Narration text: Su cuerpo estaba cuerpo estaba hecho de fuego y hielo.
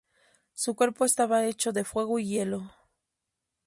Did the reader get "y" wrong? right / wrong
right